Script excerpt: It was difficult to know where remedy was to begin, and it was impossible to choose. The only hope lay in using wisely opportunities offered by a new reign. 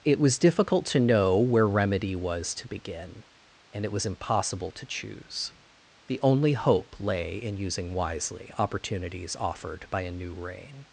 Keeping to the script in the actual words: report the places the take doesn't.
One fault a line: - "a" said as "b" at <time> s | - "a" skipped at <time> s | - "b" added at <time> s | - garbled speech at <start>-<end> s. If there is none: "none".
none